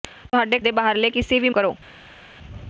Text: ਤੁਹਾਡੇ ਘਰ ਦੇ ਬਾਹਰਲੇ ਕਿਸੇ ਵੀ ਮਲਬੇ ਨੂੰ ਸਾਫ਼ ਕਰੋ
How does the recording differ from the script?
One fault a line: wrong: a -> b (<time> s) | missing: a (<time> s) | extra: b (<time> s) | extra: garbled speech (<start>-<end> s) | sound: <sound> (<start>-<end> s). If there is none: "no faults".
missing: ਘਰ (0.6 s)
missing: ਮਲਬੇ ਨੂੰ ਸਾਫ਼ (1.5 s)